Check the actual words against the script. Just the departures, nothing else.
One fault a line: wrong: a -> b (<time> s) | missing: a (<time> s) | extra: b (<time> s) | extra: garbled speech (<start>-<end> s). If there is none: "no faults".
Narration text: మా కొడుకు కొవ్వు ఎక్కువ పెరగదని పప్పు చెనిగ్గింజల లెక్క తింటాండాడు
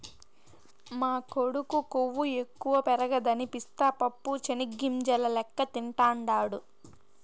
extra: పిస్తా (3.5 s)